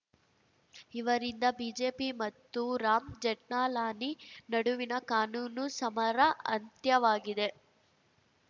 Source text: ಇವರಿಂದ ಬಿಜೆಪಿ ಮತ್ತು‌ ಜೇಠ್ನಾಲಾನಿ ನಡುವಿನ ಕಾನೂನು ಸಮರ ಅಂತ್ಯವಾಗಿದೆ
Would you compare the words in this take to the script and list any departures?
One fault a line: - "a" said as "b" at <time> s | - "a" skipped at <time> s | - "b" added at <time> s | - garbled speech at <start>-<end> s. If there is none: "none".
- "ರಾಮ್" added at 2.8 s